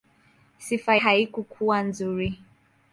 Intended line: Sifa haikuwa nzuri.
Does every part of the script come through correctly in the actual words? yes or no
yes